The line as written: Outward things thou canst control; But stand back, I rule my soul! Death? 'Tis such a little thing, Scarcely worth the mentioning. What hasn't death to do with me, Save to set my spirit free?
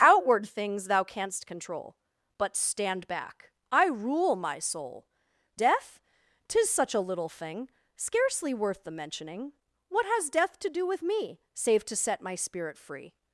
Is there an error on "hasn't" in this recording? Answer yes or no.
yes